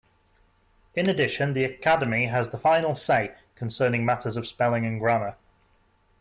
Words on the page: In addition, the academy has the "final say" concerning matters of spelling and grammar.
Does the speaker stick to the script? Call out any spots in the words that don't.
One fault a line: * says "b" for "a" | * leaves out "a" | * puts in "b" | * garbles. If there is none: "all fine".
all fine